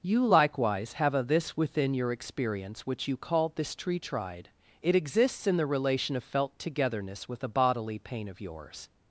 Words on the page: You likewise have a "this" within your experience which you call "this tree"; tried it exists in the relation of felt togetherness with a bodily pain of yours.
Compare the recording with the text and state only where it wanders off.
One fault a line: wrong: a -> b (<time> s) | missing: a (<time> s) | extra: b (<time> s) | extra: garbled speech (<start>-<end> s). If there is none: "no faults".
no faults